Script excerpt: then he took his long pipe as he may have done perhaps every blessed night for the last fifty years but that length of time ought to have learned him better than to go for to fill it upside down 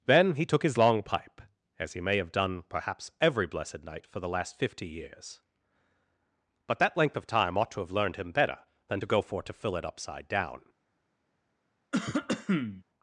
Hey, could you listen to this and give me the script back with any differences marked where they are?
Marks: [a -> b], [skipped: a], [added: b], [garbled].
then he took his long pipe as he may have done perhaps every blessed night for the last fifty years but that length of time ought to have learned him better than to go for to fill it upside down